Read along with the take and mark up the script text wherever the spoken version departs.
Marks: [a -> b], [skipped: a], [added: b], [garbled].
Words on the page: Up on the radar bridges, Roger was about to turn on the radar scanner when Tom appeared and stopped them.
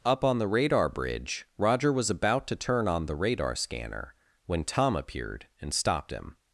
Up on the radar [bridges, -> bridge] Roger was about to turn on the radar scanner when Tom appeared and stopped [them. -> him]